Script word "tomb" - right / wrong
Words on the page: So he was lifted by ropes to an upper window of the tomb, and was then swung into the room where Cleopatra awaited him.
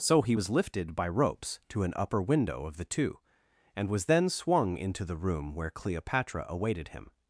wrong